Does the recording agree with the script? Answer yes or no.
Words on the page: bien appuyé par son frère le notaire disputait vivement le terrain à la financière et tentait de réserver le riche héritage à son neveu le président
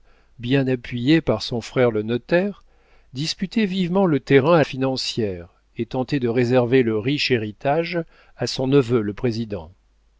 no